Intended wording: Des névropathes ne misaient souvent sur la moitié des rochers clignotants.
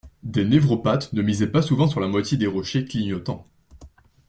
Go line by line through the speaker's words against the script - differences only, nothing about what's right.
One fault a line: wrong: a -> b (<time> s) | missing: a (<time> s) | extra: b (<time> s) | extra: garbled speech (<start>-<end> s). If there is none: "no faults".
extra: pas (1.5 s)